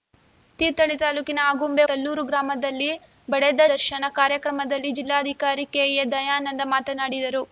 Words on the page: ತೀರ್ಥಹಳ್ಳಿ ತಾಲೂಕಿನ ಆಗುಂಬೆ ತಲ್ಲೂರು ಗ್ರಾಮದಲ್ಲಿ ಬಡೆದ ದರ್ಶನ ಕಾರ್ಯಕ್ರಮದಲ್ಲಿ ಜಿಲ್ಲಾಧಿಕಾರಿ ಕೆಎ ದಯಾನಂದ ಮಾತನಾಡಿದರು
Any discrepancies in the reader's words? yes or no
no